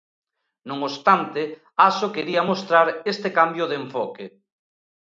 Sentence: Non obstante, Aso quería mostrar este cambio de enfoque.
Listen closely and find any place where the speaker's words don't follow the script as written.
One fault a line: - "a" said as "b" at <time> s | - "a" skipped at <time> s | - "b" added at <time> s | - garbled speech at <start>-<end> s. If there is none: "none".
none